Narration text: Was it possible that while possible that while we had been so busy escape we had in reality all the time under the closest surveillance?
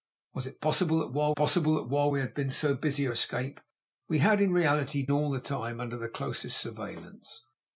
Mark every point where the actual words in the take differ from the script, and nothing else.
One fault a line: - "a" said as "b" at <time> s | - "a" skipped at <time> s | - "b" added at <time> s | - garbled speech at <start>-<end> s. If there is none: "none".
none